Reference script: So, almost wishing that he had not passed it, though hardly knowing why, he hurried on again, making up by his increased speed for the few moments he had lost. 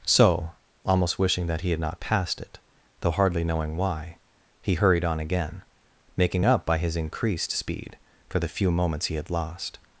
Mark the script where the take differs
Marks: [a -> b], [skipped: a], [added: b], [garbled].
So, almost wishing that he had not passed it, though hardly knowing why, he hurried on again, making up by his increased speed for the few moments he had lost.